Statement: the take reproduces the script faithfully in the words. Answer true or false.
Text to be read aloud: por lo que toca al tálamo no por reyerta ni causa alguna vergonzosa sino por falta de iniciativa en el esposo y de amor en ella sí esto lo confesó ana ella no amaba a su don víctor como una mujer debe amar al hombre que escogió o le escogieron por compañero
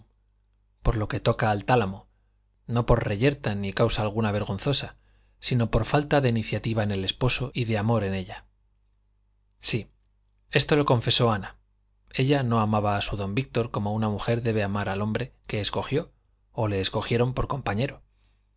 true